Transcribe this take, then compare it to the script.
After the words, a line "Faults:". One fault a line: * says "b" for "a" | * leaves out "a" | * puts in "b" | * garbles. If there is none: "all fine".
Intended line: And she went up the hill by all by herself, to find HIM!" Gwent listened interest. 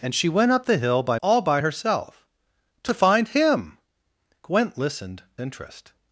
And she went up the hill by all by herself, to find HIM!" Gwent listened interest.
Faults:
all fine